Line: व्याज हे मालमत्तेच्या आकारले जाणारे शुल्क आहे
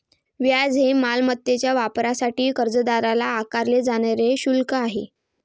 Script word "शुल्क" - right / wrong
right